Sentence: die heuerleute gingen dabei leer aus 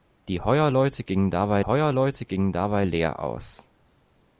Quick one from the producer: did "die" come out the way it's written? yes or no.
yes